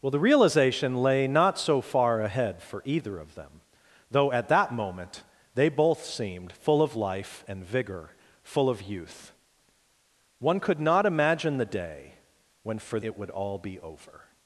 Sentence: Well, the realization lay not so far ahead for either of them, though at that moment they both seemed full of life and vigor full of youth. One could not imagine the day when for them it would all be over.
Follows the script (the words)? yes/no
no